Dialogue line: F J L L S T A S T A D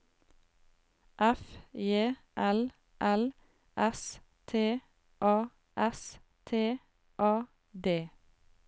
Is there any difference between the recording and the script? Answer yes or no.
no